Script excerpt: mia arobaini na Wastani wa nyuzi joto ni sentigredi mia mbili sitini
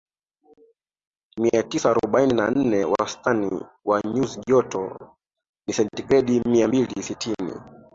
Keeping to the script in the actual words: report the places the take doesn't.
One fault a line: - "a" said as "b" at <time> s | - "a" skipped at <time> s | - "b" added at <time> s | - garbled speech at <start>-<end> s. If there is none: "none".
- "tisa" added at 1.6 s
- "nne" added at 2.5 s